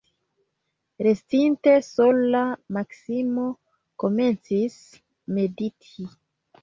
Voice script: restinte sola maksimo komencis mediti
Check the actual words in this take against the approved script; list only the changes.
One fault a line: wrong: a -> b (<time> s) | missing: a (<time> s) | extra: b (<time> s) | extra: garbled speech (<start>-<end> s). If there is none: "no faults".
no faults